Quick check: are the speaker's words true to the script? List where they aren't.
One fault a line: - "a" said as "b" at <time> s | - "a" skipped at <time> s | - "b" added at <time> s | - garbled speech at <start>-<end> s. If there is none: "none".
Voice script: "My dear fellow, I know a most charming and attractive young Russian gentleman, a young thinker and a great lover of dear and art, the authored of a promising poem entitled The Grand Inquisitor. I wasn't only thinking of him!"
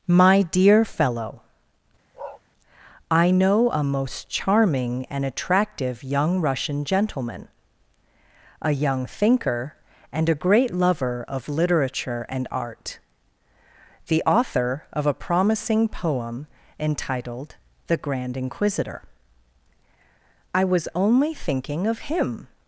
- "dear" said as "literature" at 11.5 s
- "authored" said as "author" at 14.3 s
- "wasn't" said as "was" at 20.6 s